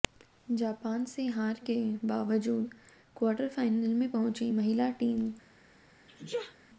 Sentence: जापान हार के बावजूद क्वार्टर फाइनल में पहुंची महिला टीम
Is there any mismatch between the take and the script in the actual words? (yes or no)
yes